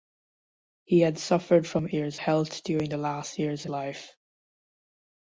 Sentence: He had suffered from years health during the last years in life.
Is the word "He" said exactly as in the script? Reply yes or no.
yes